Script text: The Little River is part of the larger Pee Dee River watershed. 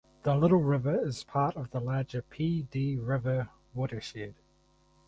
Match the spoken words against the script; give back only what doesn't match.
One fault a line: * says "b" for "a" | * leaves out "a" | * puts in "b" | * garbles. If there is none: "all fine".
all fine